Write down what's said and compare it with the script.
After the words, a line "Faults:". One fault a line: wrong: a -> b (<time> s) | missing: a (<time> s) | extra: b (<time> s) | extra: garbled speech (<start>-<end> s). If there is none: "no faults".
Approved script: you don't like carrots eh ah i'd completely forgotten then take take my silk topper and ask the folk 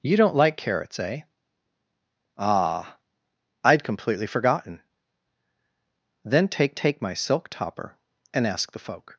you don't like carrots eh ah i'd completely forgotten then take take my silk topper and ask the folk
Faults:
no faults